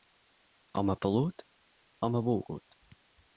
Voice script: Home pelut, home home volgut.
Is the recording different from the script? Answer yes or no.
yes